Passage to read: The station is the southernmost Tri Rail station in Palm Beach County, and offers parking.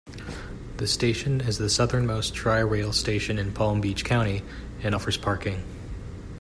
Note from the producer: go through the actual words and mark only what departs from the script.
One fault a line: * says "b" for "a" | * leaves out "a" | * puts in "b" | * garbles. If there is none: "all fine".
all fine